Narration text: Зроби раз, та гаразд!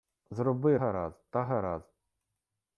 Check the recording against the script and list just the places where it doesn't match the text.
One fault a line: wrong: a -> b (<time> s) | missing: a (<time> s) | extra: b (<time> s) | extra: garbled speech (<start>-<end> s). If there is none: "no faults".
wrong: раз -> гаразд (0.7 s)